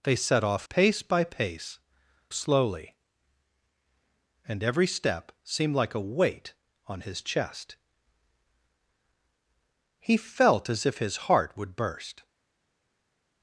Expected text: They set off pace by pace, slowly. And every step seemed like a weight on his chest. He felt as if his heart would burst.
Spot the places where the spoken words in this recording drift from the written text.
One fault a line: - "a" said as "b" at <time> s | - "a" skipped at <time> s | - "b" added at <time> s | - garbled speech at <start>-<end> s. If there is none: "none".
none